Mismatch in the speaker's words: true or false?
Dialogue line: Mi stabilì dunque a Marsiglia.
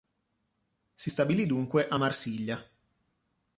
true